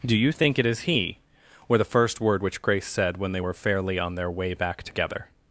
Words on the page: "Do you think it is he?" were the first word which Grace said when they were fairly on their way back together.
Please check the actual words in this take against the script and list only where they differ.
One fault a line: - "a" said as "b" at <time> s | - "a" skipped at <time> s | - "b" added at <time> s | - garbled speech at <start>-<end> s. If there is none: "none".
none